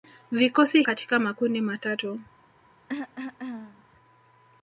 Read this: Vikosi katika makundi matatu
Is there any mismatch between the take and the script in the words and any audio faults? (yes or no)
yes